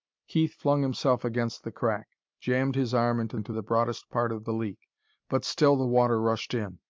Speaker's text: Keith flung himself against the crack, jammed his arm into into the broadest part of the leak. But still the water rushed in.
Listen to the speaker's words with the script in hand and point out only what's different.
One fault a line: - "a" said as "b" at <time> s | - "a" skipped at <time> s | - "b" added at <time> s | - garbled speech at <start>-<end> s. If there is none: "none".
none